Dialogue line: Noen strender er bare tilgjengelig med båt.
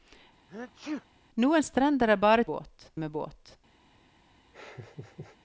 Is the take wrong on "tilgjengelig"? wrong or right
wrong